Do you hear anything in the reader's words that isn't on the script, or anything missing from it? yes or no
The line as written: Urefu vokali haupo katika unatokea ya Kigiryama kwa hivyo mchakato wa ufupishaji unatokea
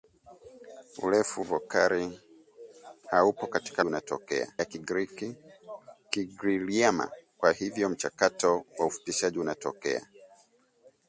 no